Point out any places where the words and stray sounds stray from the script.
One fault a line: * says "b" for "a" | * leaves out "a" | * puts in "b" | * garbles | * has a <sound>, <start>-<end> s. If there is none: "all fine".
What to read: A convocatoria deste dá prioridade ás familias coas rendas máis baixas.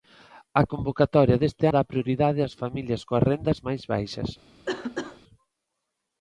* has a cough, 4.7-5.2 s